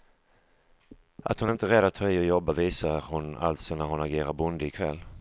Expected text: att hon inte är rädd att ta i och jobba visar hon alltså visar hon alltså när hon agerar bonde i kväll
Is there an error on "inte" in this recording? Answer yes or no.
no